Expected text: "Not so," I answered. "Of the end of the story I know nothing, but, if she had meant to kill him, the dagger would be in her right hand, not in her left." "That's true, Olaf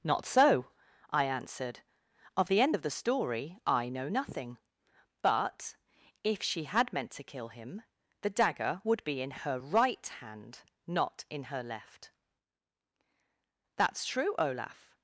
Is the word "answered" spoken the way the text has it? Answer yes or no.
yes